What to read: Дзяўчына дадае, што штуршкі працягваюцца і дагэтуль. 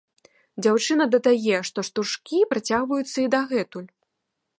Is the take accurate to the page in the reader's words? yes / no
yes